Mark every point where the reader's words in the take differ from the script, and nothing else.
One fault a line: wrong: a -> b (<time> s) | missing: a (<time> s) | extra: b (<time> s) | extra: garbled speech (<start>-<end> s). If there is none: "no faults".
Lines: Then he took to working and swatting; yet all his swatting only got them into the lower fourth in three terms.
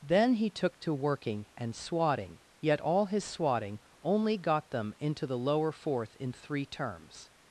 no faults